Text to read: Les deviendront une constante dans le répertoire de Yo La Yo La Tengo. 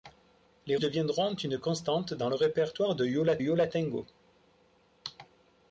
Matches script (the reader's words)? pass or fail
pass